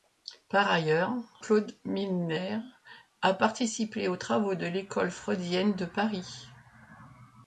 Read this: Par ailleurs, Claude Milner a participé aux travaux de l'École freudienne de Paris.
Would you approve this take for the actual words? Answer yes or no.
yes